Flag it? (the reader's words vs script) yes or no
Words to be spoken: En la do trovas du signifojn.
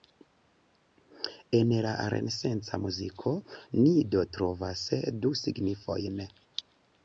yes